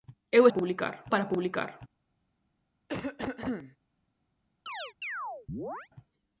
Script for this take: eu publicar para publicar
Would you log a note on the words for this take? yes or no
no